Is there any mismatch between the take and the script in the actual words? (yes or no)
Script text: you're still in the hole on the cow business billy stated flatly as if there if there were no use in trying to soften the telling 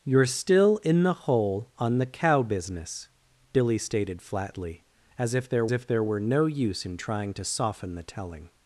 no